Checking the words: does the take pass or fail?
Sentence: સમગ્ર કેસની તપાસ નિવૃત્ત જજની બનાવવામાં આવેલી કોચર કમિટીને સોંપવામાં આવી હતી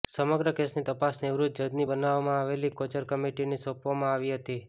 pass